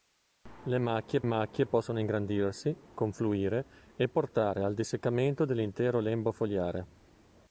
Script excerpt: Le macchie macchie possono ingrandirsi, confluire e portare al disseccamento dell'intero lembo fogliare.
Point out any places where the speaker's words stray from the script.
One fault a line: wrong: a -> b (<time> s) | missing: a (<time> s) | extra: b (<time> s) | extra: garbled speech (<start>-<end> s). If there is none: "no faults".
no faults